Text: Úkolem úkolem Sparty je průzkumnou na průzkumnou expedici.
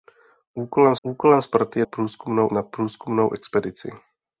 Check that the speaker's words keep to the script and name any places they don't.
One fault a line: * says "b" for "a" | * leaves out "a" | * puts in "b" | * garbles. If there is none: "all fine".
all fine